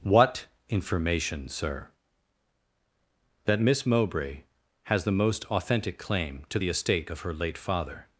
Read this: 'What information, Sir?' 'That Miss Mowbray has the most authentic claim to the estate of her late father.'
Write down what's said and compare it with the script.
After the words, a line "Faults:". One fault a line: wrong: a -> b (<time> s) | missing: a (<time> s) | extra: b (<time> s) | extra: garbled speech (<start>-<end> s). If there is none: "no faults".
'What information, Sir?' 'That Miss Mowbray has the most authentic claim to the estate of her late father.'
Faults:
no faults